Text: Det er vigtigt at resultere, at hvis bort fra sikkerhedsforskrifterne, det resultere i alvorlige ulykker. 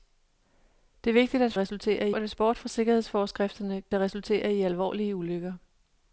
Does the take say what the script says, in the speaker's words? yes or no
yes